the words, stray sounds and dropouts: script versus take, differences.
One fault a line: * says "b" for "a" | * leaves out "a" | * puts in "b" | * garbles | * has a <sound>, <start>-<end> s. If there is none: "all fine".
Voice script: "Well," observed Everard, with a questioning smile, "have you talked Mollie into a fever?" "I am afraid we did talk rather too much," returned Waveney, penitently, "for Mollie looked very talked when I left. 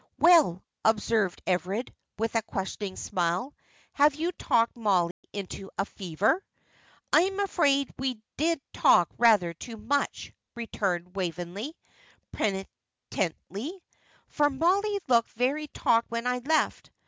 * has a dropout, 5.1-5.2 s